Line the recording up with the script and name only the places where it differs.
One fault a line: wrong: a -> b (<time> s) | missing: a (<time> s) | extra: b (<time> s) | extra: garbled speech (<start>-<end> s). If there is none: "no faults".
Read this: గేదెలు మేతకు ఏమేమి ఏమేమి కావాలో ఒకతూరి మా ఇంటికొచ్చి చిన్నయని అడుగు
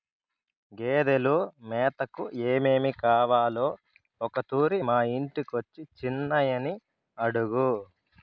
missing: ఏమేమి (2.9 s)